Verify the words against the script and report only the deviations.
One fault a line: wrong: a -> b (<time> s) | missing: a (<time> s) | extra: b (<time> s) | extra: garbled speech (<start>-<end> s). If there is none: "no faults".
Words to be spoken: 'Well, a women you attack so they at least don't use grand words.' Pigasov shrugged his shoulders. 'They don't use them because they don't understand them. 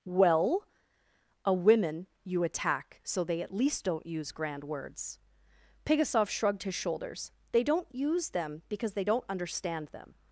no faults